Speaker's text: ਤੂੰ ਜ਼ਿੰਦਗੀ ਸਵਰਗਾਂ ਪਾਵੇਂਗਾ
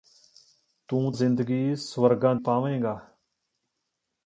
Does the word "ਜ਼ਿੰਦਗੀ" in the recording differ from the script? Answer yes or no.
no